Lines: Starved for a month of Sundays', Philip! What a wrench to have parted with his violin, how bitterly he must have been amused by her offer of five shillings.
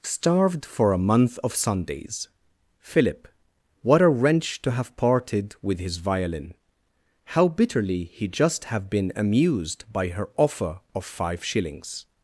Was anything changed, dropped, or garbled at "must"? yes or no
yes